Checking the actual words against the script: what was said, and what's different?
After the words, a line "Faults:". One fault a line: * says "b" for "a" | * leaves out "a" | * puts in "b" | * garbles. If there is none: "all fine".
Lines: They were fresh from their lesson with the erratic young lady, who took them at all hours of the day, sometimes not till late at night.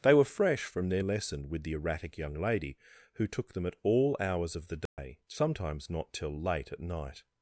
They were fresh from their lesson with the erratic young lady, who took them at all hours of the day, sometimes not till late at night.
Faults:
all fine